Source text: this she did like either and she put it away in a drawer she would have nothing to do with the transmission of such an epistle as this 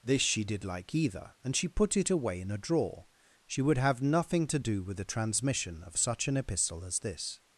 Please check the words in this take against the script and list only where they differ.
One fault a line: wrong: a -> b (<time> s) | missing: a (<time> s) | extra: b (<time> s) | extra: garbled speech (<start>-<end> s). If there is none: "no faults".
no faults